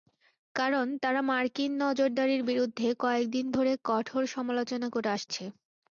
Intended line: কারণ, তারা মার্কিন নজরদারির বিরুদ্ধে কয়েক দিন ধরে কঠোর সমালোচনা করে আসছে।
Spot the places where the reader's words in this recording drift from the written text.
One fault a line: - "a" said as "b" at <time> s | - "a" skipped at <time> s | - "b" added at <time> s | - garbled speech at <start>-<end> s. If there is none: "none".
none